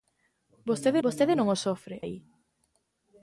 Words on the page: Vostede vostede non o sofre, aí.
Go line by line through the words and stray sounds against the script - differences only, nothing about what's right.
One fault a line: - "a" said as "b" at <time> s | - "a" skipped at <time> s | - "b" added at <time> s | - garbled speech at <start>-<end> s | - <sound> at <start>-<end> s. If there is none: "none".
none